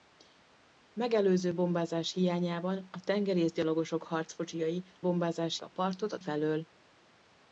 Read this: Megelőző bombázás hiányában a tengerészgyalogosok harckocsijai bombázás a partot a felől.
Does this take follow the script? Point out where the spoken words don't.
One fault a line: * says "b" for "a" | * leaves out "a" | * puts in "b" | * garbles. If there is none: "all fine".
all fine